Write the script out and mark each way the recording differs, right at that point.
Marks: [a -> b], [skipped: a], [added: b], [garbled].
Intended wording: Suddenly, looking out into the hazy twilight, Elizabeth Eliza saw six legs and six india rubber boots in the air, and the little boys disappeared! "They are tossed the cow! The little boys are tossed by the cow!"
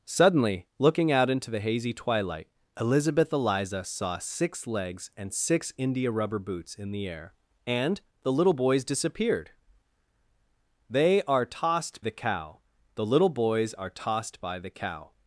Suddenly, looking out into the hazy twilight, Elizabeth Eliza saw six legs and six india rubber boots in the air, and the little boys disappeared! "They are tossed the cow! The little boys are tossed by the cow!"